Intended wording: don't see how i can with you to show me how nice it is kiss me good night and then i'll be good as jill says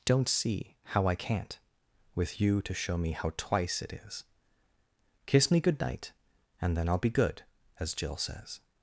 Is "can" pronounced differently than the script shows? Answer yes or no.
yes